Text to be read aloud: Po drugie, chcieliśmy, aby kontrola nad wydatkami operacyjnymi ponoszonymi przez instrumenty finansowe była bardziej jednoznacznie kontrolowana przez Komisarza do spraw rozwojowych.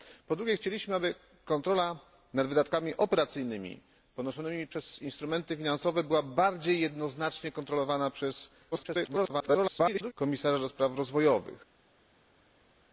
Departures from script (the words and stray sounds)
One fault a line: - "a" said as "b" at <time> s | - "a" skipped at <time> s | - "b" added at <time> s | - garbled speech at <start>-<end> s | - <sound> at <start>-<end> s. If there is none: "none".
- garbled speech at 8.7-10.1 s